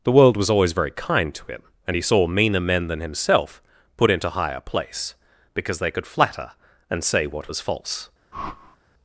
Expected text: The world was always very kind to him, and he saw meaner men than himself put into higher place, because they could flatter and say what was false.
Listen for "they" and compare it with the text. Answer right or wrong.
right